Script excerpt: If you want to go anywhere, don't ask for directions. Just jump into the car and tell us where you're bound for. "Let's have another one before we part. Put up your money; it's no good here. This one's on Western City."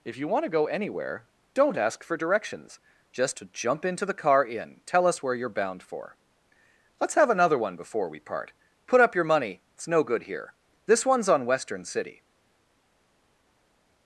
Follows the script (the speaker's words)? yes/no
no